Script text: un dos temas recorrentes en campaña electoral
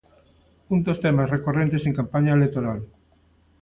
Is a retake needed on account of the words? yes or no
no